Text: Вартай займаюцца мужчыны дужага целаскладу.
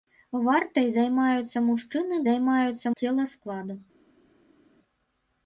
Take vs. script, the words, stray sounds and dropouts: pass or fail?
fail